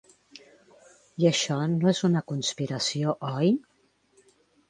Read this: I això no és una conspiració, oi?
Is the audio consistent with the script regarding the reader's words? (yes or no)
yes